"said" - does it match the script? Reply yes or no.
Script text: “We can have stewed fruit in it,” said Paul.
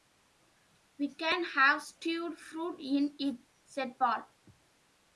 yes